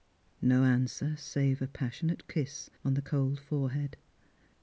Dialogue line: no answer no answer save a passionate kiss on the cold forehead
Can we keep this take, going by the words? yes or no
no